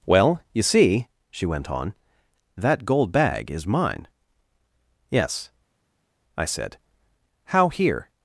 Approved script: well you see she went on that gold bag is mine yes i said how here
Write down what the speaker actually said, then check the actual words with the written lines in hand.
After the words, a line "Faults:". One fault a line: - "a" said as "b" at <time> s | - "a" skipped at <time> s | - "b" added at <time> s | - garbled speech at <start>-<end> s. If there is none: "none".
well you see she went on that gold bag is mine yes i said how here
Faults:
none